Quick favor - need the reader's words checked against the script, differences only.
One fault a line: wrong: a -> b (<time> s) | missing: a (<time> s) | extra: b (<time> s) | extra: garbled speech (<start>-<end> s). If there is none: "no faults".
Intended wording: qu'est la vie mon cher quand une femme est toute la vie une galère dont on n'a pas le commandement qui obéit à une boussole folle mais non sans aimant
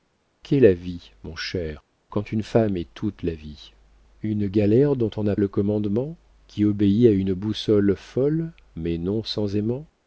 missing: pas (5.3 s)